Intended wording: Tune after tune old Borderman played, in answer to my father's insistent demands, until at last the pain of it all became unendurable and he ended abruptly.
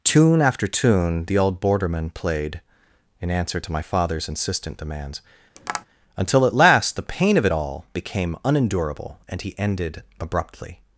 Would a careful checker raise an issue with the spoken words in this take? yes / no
yes